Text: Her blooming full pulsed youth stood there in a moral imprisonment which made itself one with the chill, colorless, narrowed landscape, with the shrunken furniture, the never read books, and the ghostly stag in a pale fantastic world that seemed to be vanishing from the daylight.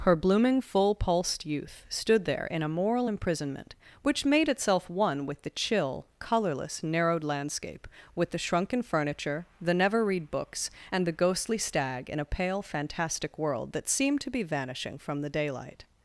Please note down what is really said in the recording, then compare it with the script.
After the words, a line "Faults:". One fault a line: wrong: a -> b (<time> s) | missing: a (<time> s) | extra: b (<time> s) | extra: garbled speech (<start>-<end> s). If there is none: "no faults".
Her blooming full pulsed youth stood there in a moral imprisonment which made itself one with the chill, colorless, narrowed landscape, with the shrunken furniture, the never read books, and the ghostly stag in a pale fantastic world that seemed to be vanishing from the daylight.
Faults:
no faults